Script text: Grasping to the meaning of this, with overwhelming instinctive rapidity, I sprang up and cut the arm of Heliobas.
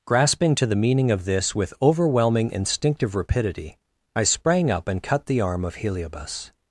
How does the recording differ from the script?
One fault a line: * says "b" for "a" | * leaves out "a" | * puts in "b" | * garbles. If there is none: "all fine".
all fine